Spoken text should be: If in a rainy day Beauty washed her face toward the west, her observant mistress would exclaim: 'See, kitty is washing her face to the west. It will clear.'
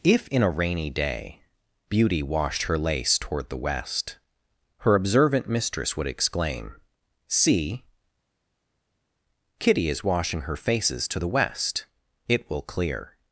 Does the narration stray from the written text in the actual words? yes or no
yes